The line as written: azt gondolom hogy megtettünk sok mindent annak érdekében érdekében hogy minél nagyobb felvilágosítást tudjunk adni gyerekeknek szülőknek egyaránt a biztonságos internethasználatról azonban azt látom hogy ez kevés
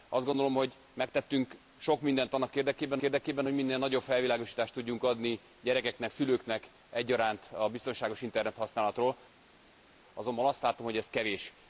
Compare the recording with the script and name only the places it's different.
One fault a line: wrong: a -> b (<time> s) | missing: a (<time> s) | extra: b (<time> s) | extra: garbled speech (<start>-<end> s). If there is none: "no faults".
no faults